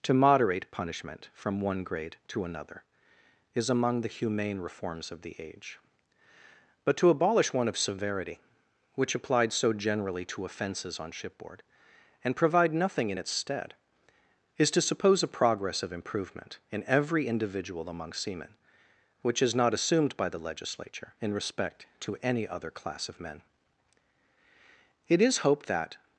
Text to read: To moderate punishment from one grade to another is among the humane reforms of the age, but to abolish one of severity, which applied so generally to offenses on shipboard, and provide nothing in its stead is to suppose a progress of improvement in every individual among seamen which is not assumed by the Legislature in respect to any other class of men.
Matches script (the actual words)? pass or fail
fail